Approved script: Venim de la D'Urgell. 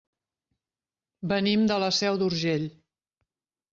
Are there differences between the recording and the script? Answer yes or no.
yes